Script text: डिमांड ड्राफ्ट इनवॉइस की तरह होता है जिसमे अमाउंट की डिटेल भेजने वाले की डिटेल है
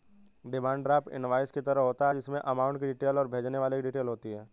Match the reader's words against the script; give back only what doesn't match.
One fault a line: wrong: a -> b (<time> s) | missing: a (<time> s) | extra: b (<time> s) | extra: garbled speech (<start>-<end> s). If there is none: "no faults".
extra: और (3.2 s)
extra: होती (4.1 s)